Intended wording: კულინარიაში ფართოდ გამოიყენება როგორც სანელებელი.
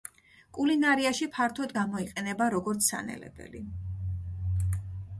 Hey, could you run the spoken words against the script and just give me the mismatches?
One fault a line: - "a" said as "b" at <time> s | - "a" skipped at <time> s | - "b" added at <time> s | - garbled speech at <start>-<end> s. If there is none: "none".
none